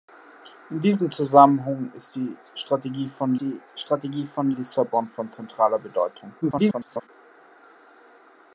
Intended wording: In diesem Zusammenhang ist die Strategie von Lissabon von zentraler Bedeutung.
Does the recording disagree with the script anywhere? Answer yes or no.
yes